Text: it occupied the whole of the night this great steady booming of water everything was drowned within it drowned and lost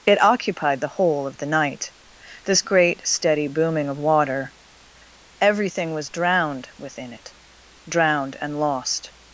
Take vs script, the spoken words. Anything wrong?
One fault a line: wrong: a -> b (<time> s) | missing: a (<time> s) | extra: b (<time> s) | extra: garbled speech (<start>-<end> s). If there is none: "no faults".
no faults